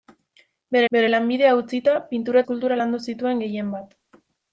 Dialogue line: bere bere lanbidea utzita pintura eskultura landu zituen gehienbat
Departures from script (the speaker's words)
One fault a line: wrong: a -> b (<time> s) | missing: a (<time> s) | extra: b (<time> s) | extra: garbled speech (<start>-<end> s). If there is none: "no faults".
no faults